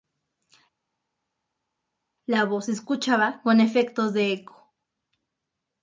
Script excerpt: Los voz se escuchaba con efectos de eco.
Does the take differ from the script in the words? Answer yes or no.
yes